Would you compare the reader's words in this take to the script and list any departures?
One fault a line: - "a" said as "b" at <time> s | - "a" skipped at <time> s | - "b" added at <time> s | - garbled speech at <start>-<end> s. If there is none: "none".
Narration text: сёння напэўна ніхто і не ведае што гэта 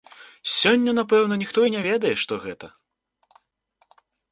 none